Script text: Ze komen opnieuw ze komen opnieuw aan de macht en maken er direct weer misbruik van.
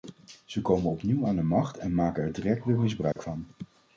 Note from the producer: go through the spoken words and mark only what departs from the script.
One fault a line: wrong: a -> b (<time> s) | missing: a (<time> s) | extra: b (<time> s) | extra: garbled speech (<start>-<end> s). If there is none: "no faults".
missing: ze komen opnieuw (1.3 s)